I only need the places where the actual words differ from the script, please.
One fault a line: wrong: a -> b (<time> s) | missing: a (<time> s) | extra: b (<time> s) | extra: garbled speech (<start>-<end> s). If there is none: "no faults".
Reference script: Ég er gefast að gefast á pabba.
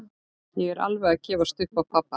wrong: gefast -> alveg (0.9 s)
extra: upp (1.7 s)